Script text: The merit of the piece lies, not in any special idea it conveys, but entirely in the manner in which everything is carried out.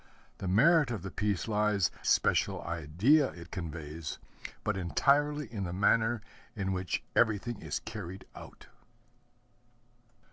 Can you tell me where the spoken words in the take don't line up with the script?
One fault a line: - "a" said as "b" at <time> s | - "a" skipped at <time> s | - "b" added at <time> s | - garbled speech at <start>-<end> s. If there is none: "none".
- "not in any" skipped at 1.9 s